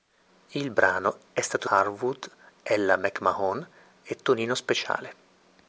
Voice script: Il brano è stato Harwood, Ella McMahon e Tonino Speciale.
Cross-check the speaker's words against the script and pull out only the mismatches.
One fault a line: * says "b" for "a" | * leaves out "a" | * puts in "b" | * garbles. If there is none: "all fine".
all fine